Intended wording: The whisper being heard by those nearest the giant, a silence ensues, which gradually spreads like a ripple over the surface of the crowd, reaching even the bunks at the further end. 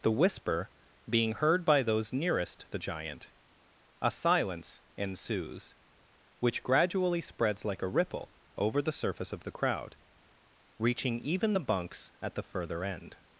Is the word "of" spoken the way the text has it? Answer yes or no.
yes